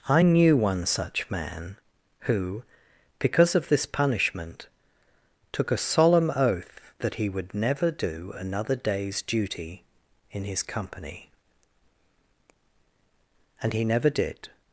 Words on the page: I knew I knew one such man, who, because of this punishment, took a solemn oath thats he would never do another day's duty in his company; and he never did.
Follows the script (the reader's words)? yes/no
no